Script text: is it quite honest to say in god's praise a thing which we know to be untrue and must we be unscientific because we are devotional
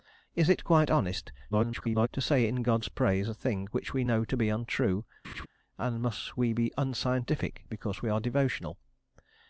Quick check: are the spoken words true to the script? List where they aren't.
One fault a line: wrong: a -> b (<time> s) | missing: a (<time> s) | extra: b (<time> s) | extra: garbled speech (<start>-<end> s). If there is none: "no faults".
extra: garbled speech (1.5-2.1 s)